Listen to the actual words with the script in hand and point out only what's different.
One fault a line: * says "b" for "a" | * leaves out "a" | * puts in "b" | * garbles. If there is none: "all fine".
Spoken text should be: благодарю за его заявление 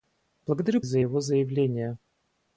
all fine